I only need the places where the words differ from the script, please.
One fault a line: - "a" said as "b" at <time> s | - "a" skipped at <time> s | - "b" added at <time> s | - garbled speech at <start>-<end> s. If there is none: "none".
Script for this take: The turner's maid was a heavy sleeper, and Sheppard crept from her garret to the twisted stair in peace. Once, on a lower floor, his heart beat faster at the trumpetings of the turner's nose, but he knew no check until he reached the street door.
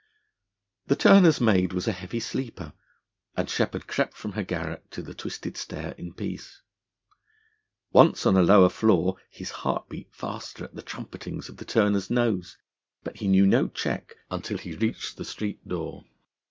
none